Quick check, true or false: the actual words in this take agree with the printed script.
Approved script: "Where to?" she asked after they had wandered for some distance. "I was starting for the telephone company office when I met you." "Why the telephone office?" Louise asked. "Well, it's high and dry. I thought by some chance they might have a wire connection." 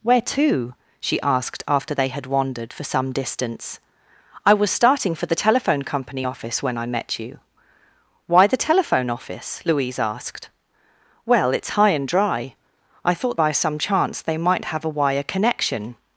true